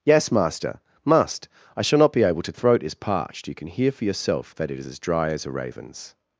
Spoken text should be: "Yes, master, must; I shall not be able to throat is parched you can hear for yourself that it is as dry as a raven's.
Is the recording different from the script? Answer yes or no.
no